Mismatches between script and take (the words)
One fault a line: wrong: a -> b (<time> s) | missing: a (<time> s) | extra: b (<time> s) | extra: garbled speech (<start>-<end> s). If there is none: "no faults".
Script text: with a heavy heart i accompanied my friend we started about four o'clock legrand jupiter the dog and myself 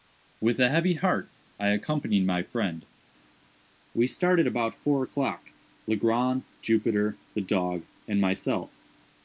no faults